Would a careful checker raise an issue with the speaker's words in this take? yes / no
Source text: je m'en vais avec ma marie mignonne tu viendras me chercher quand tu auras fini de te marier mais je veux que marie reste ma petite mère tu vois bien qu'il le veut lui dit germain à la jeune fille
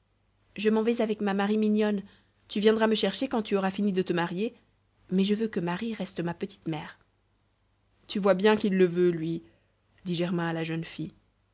no